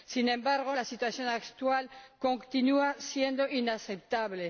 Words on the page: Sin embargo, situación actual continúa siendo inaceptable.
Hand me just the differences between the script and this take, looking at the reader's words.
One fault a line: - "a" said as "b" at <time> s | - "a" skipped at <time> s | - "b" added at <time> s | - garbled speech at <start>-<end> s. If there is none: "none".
- "la" added at 0.7 s